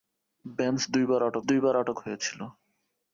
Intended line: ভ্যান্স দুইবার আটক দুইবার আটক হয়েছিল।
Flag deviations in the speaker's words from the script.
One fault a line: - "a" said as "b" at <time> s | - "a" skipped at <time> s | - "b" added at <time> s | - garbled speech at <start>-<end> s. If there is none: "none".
none